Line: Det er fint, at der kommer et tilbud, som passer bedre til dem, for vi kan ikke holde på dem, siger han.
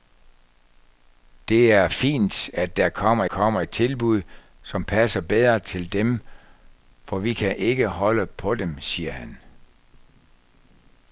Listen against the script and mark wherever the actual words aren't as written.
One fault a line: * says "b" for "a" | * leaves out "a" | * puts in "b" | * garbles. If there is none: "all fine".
* puts in "kommer"